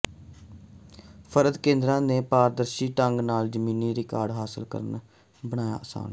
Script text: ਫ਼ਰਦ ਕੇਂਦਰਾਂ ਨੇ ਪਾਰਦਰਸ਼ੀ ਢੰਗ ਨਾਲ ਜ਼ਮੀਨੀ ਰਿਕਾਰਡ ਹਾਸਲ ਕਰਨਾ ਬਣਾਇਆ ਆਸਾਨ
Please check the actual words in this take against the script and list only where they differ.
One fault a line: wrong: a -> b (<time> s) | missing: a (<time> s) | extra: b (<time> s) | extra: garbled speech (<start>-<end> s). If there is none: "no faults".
no faults